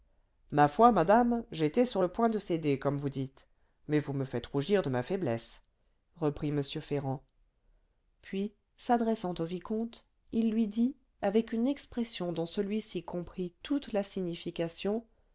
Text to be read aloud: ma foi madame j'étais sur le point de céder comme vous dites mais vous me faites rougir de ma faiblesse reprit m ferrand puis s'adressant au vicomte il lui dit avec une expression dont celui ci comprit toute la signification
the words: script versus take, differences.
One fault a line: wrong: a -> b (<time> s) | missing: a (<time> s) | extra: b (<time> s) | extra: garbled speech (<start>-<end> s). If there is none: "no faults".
no faults